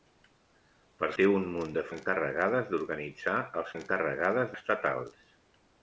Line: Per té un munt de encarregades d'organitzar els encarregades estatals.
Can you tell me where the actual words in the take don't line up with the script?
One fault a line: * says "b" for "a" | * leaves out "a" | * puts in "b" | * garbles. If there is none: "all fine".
all fine